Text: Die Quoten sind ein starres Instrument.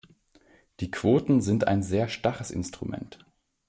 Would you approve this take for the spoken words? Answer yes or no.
no